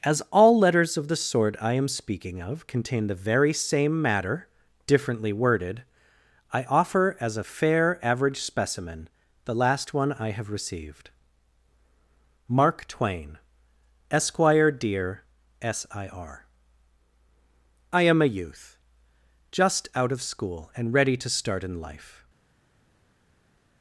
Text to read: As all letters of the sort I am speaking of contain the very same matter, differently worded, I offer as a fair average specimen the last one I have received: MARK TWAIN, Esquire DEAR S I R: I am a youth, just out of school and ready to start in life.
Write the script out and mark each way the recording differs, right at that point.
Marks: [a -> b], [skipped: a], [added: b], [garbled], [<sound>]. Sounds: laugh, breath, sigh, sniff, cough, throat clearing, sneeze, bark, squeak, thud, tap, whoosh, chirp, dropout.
As all letters of the sort I am speaking of contain the very same matter, differently worded, I offer as a fair average specimen the last one I have received: MARK TWAIN, Esquire DEAR S I R: I am a youth, just out of school and ready to start in life.